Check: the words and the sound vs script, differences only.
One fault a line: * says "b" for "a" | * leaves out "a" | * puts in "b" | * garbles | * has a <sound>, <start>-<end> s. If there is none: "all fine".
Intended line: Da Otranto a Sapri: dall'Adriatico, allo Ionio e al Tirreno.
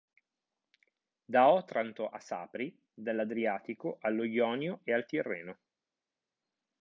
all fine